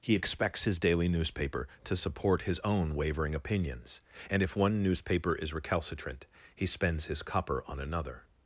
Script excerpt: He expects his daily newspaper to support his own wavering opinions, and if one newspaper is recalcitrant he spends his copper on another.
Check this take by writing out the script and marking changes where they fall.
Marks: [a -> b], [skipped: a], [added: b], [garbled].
He expects his daily newspaper to support his own wavering opinions, and if one newspaper is recalcitrant he spends his copper on another.